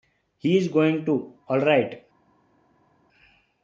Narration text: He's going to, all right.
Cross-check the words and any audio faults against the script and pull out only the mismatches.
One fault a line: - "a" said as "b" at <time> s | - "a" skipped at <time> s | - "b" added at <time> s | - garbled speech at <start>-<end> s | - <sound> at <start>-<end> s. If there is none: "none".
none